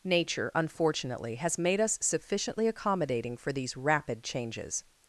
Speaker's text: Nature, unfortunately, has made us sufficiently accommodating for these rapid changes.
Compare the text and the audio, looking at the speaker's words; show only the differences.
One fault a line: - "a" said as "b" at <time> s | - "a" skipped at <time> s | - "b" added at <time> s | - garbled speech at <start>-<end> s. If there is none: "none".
none